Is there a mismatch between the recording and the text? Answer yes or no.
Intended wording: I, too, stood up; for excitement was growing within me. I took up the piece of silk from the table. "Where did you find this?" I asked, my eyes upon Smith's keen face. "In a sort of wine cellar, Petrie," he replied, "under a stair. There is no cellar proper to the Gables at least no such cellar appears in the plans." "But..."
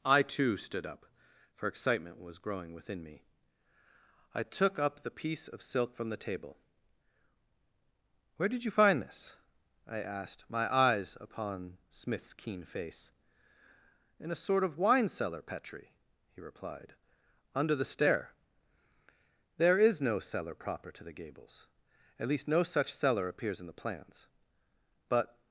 yes